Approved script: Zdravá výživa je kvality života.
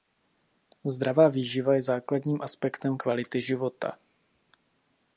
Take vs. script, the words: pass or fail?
fail